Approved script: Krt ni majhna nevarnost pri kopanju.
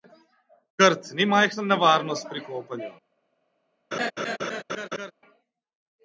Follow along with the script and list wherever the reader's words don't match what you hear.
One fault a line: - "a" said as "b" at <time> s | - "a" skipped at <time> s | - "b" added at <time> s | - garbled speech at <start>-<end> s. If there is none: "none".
none